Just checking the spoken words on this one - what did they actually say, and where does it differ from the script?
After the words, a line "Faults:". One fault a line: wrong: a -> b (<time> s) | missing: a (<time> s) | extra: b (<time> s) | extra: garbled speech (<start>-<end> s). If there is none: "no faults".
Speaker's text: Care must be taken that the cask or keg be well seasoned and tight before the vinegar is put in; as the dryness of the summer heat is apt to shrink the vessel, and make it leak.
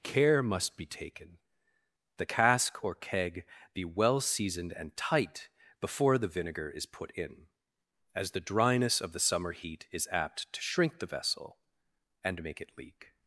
Care must be taken the cask or keg be well seasoned and tight before the vinegar is put in; as the dryness of the summer heat is apt to shrink the vessel, and make it leak.
Faults:
missing: that (1.4 s)